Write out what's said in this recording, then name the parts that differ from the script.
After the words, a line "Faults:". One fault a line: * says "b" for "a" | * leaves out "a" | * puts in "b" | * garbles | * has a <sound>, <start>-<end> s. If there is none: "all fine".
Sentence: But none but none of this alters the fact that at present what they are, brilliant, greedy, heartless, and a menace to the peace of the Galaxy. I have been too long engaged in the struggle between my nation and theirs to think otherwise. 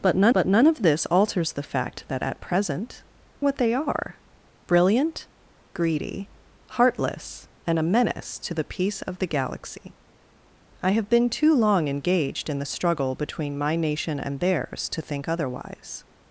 But none but none of this alters the fact that at present what they are, brilliant, greedy, heartless, and a menace to the peace of the Galaxy. I have been too long engaged in the struggle between my nation and theirs to think otherwise.
Faults:
all fine